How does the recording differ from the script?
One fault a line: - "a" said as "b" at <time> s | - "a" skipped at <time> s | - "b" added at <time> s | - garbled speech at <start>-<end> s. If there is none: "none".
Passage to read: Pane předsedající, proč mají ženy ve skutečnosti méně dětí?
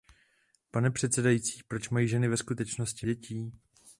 - "méně" skipped at 3.1 s